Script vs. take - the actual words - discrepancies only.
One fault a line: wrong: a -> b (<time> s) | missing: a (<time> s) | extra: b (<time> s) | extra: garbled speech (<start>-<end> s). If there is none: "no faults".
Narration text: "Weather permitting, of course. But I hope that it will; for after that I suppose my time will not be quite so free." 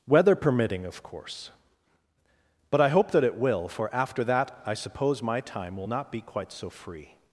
no faults